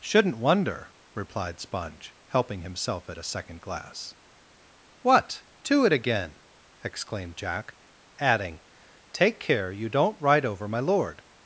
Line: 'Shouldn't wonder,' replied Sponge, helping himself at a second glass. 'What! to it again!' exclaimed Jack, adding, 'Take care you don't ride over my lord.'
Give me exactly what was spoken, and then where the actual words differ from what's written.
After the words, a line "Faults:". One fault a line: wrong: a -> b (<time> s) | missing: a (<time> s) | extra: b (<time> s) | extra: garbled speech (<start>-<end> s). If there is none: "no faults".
'Shouldn't wonder,' replied Sponge, helping himself at a second glass. 'What! to it again!' exclaimed Jack, adding, 'Take care you don't ride over my lord.'
Faults:
no faults